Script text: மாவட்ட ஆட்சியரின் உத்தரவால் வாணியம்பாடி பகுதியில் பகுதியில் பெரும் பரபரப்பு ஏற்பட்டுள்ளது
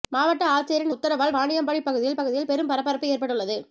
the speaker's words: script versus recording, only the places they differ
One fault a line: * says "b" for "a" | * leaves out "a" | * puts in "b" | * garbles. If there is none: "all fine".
all fine